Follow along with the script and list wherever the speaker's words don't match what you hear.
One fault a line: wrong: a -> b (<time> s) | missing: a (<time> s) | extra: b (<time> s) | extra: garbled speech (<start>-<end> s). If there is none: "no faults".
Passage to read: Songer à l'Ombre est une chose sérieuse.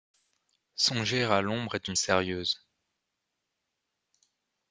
missing: chose (2.0 s)